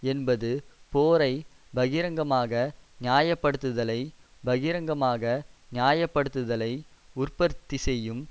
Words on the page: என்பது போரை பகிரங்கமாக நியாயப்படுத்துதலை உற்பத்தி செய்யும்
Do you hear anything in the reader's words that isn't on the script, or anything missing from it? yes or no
yes